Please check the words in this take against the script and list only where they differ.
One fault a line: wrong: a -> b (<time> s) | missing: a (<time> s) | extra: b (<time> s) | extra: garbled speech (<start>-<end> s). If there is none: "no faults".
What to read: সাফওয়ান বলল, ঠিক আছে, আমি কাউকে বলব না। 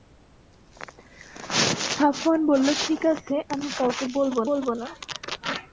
extra: বলব (4.5 s)